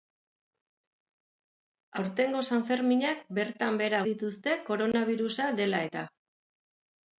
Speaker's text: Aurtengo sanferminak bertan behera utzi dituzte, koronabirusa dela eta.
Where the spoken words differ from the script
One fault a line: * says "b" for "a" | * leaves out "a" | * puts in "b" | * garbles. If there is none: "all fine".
* leaves out "utzi"